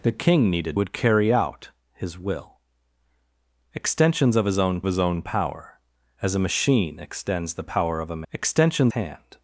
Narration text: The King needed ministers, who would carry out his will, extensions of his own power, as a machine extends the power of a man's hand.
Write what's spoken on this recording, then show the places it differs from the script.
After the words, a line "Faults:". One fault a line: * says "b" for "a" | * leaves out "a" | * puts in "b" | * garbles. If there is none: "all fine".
The King needed would carry out his will, extensions of his own his own power, as a machine extends the power of a extensions hand.
Faults:
* leaves out "ministers who"
* puts in "his own"
* says "extensions" for "man's"